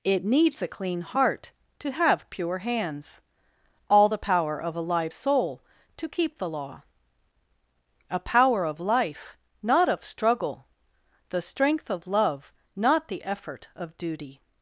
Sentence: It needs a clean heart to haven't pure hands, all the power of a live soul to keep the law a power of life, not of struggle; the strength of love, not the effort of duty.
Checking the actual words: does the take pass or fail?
fail